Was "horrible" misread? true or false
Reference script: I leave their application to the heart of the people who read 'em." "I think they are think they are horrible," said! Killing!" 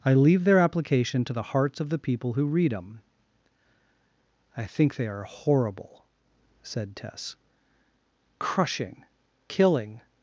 true